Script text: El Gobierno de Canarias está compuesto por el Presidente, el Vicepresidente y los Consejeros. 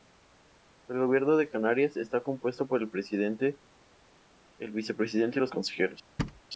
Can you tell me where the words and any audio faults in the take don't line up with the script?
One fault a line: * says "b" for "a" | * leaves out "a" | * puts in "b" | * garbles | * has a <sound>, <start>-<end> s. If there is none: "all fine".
* has a thud, 6.2-6.4 s